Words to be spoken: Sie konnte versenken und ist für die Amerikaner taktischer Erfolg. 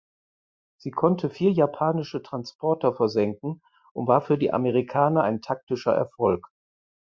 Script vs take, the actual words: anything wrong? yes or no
yes